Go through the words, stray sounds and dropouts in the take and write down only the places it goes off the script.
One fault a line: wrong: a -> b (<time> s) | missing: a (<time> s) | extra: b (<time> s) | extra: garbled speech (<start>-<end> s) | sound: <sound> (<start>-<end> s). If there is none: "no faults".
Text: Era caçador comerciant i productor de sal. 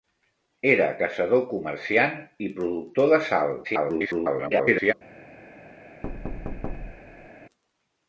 extra: garbled speech (3.6-4.9 s)
sound: thud (6.0-7.3 s)